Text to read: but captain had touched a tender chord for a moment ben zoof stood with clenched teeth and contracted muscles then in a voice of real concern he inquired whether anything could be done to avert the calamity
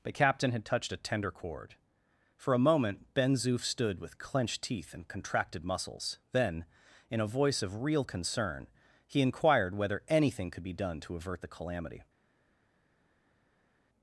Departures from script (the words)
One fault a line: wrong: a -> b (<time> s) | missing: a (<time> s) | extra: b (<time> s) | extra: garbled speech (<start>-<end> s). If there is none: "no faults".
no faults